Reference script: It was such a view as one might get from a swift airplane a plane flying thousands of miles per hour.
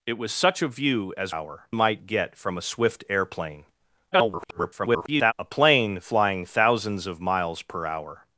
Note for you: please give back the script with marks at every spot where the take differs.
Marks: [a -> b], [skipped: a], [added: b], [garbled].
It was such a view as [one -> hour] might get from a swift airplane [garbled] a plane flying thousands of miles per hour.